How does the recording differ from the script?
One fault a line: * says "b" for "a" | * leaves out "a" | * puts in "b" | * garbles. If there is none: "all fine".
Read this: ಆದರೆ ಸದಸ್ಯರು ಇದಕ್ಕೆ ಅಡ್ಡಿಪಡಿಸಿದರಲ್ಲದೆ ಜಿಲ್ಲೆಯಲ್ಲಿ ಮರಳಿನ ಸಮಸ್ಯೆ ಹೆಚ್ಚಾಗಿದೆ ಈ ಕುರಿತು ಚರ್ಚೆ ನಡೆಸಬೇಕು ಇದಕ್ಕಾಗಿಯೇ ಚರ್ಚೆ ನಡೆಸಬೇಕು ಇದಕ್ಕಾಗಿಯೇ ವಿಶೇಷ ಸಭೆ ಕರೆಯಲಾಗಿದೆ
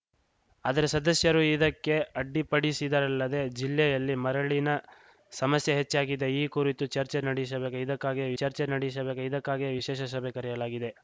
all fine